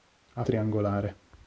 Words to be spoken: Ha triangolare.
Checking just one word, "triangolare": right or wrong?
right